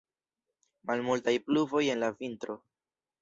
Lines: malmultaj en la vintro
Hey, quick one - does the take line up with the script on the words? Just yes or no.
no